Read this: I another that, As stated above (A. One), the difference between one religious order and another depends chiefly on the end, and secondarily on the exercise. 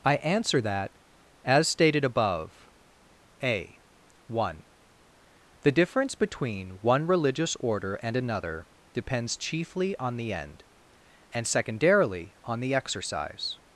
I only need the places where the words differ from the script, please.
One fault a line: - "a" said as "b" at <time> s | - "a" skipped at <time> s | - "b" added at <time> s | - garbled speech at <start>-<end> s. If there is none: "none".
- "another" said as "answer" at 0.2 s